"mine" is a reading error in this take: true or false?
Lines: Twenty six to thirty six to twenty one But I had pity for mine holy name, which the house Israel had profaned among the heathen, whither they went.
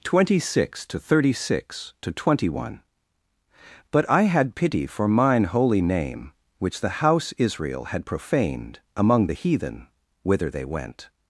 false